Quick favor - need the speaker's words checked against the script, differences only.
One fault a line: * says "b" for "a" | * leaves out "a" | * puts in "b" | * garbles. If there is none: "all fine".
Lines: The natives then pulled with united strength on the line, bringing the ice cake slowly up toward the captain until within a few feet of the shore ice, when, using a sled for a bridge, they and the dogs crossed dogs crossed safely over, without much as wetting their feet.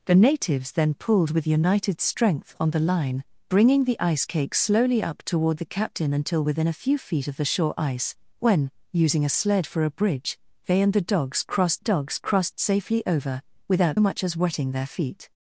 all fine